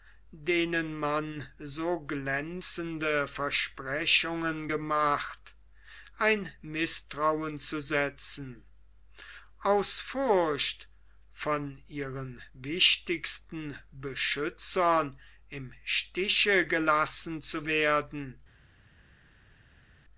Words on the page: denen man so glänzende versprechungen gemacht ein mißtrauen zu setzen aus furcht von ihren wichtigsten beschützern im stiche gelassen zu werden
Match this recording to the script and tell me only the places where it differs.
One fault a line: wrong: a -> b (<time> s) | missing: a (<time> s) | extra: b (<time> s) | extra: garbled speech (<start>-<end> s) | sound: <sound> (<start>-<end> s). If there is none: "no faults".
no faults